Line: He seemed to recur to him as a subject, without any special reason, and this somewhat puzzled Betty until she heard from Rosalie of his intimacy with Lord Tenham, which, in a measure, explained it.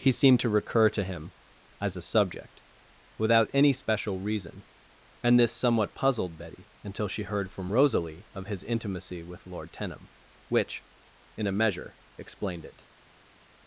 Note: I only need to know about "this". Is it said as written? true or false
true